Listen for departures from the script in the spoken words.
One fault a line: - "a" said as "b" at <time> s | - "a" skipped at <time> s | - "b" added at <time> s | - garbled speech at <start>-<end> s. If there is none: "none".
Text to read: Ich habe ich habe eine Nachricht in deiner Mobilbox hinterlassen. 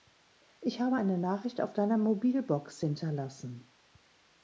- "ich habe" skipped at 0.9 s
- "in" said as "auf" at 1.6 s